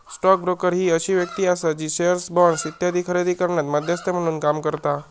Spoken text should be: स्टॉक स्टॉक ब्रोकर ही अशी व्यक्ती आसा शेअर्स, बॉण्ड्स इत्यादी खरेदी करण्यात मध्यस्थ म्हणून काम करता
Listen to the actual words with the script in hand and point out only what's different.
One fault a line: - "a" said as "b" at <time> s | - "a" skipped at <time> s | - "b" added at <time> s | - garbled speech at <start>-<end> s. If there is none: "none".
- "स्टॉक" skipped at 0.4 s
- "जी" added at 1.7 s